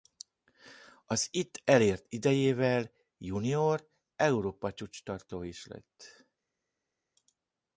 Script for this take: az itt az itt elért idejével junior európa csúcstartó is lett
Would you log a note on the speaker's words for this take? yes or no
yes